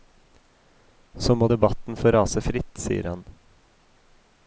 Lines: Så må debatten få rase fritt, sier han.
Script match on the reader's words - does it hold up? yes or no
yes